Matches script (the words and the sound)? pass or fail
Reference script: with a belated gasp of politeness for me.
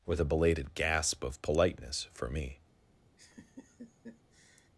fail